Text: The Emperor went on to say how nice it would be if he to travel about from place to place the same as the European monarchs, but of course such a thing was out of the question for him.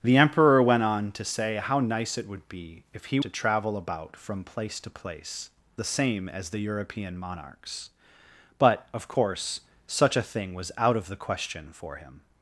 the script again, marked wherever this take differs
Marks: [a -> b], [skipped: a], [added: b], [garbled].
The Emperor went on to say how nice it would be if he to travel about from place to place the same as the European monarchs, but of course such a thing was out of the question for him.